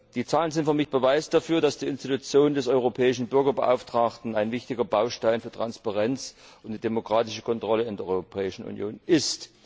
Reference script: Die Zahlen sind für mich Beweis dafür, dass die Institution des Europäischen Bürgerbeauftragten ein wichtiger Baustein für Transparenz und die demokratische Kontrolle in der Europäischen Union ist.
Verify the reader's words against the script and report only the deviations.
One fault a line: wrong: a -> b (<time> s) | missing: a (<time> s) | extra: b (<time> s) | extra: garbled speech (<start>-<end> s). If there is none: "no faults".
no faults